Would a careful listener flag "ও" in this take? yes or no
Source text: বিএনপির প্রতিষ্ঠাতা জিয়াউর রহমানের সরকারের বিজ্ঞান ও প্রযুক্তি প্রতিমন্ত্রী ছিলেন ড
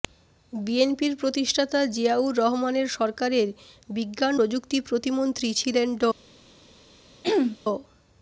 yes